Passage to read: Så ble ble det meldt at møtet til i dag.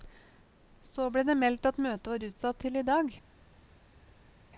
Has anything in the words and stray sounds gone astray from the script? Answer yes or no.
yes